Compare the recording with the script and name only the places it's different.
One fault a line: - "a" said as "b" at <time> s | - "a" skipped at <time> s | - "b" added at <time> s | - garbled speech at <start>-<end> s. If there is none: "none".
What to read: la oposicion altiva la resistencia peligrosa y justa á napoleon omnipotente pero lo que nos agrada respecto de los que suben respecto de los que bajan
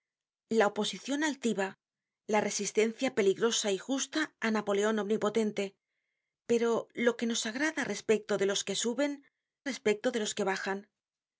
none